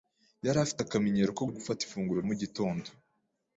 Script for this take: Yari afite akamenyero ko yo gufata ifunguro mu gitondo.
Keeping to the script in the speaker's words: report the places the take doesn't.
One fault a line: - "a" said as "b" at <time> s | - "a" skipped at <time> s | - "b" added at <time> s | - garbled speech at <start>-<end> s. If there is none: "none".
none